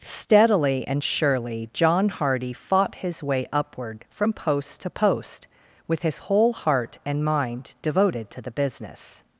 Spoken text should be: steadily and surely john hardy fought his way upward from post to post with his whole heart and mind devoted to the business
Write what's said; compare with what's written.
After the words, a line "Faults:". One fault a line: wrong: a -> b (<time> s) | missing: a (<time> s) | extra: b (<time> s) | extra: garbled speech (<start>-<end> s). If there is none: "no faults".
steadily and surely john hardy fought his way upward from post to post with his whole heart and mind devoted to the business
Faults:
no faults